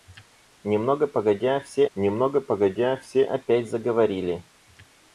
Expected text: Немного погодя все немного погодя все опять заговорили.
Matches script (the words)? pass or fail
pass